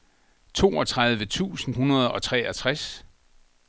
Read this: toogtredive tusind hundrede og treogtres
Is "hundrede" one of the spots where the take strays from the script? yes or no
no